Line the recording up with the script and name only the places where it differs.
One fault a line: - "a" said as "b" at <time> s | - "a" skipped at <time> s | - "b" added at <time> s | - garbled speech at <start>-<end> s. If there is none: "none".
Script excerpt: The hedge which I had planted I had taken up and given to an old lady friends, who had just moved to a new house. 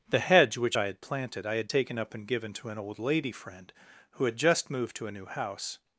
- "friends" said as "friend" at 3.3 s